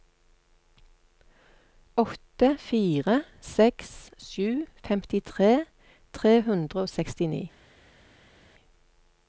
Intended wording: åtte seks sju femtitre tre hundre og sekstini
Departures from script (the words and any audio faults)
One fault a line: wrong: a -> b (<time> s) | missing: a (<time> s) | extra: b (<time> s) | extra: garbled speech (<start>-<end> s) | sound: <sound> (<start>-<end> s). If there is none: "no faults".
extra: fire (2.7 s)